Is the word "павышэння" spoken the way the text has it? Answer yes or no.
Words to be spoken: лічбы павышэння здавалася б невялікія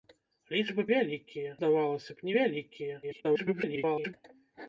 no